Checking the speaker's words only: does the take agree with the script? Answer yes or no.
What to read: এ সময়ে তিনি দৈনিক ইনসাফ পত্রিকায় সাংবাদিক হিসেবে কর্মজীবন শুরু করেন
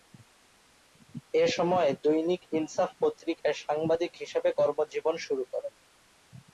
no